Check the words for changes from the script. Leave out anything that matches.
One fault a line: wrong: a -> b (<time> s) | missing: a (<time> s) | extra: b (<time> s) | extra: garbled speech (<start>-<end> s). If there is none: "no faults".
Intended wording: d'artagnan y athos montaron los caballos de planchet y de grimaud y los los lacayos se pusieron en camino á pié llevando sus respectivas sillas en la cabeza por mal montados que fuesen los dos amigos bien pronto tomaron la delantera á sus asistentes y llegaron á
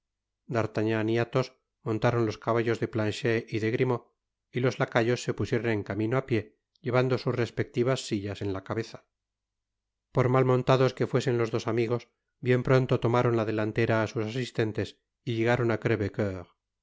missing: los (4.8 s)